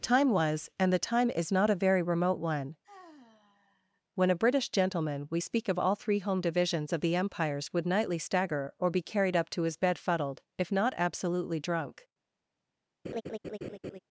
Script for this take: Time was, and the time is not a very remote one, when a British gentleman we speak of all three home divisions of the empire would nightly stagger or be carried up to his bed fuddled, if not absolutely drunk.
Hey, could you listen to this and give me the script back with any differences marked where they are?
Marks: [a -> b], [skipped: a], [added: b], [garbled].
Time was, and the time is not a very remote one, when a British gentleman we speak of all three home divisions of the [empire -> empires] would nightly stagger or be carried up to his bed fuddled, if not absolutely drunk.